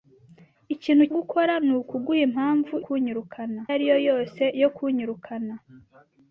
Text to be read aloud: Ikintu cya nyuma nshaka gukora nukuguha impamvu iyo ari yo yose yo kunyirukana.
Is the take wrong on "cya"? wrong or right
wrong